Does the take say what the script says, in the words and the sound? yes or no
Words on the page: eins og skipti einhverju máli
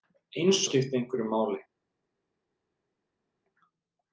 yes